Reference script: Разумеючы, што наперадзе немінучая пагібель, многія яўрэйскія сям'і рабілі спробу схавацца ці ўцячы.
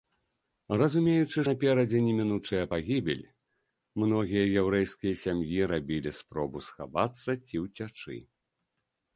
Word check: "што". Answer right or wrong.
wrong